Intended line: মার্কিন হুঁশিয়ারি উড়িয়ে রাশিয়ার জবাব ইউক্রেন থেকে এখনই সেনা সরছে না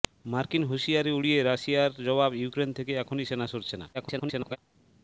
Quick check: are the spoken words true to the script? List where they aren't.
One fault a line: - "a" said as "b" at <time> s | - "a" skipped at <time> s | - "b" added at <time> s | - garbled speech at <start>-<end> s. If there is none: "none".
- garbled speech at 3.9-4.6 s